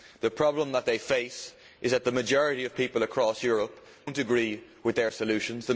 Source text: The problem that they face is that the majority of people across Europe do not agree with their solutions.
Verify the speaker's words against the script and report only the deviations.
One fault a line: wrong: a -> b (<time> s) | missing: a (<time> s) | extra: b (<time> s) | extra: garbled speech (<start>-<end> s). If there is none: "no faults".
missing: do (3.9 s)